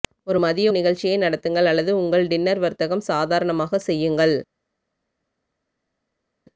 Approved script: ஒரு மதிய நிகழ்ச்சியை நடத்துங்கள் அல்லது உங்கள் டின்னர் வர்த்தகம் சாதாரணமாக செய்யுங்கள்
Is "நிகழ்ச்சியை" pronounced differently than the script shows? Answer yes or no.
no